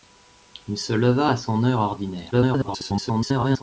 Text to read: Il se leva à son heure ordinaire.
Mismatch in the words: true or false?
true